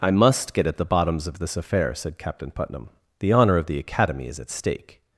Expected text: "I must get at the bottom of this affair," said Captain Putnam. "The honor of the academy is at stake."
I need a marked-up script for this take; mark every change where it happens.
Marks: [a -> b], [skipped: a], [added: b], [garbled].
"I must get at the [bottom -> bottoms] of this affair," said Captain Putnam. "The honor of the academy is at stake."